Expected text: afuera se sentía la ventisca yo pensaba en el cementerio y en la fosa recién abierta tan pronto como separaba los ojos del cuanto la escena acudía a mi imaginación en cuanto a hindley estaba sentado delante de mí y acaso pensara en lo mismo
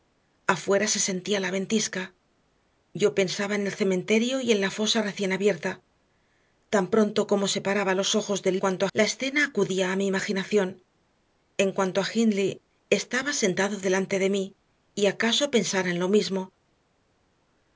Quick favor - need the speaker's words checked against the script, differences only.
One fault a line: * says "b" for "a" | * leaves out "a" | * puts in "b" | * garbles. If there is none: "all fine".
all fine